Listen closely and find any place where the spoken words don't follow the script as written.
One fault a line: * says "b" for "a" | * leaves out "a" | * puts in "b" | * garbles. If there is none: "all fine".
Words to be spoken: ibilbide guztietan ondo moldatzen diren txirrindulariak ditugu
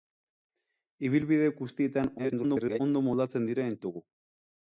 * garbles
* leaves out "txirrindulariak"